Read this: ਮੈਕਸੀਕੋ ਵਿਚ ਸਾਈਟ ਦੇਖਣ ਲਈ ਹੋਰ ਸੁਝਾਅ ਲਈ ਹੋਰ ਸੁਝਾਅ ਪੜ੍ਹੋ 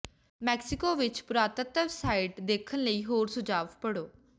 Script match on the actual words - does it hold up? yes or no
no